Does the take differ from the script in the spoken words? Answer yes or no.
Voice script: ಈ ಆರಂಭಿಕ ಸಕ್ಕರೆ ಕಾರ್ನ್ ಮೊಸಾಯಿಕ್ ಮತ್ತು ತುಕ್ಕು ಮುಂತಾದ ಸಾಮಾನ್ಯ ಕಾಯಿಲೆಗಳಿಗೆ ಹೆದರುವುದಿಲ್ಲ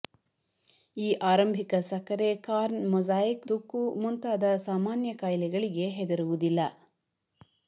yes